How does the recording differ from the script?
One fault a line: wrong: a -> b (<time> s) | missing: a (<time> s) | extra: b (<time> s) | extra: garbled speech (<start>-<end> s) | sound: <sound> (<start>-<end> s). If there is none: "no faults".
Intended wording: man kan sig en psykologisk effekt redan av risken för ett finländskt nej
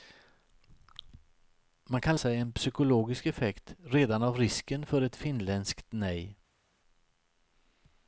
no faults